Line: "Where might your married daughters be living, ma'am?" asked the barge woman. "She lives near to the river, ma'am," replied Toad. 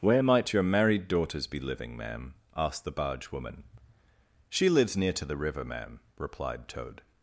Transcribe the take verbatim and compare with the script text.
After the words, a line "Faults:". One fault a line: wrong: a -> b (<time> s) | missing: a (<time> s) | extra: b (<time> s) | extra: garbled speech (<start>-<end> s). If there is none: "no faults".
"Where might your married daughters be living, ma'am?" asked the barge woman. "She lives near to the river, ma'am," replied Toad.
Faults:
no faults